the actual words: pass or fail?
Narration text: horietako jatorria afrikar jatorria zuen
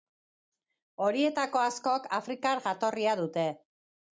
fail